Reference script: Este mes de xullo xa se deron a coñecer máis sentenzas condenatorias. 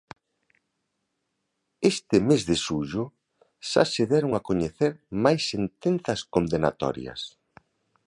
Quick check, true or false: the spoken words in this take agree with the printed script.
true